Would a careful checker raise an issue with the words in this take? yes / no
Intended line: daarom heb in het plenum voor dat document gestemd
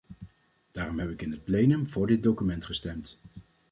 yes